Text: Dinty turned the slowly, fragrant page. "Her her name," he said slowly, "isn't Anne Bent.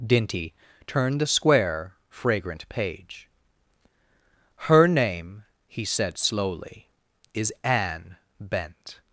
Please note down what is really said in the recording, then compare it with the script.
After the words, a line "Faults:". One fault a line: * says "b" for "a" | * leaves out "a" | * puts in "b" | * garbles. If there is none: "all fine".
Dinty turned the square, fragrant page. "Her name," he said slowly, "is Anne Bent.
Faults:
* says "square" for "slowly"
* leaves out "her"
* says "is" for "isn't"